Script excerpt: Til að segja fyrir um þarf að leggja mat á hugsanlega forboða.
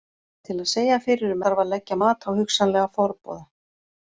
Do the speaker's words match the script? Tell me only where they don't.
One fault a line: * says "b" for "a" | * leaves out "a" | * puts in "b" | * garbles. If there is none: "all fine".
all fine